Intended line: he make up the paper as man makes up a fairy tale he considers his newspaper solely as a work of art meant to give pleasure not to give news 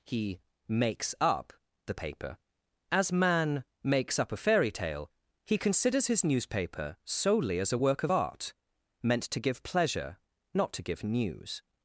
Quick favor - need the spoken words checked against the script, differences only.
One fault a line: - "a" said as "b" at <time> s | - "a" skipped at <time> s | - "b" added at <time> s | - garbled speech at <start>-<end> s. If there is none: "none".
- "make" said as "makes" at 0.7 s